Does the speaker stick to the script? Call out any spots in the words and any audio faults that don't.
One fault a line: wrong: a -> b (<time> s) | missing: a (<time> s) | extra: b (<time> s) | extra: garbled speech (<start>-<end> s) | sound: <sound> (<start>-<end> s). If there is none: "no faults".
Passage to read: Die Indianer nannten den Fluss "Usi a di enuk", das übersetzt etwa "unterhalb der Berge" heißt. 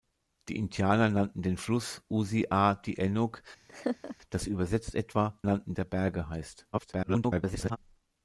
sound: laugh (3.7-4.2 s)
wrong: unterhalb -> nannten (5.4 s)
extra: garbled speech (6.7-7.8 s)